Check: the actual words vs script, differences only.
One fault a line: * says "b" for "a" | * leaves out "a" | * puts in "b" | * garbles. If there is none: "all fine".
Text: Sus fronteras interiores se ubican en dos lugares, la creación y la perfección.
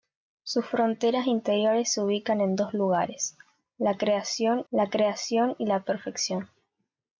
* puts in "la creación"